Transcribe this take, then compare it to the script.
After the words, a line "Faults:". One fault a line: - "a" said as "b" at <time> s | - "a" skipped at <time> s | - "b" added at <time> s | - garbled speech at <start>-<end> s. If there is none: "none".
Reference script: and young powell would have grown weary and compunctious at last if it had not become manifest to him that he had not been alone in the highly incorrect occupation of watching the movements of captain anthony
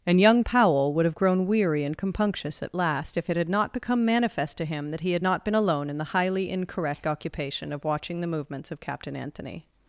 and young powell would have grown weary and compunctious at last if it had not become manifest to him that he had not been alone in the highly incorrect occupation of watching the movements of captain anthony
Faults:
none